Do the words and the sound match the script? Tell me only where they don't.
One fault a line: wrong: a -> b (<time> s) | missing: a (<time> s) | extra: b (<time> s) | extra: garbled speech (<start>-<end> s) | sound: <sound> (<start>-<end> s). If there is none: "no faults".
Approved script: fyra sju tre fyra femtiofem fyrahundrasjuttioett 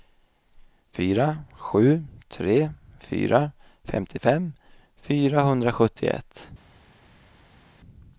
no faults